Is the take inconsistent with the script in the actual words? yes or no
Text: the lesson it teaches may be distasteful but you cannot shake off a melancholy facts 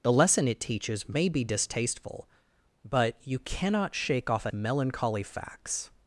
no